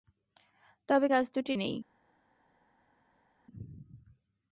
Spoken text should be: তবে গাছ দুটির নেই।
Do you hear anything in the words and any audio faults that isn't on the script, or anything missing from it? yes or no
no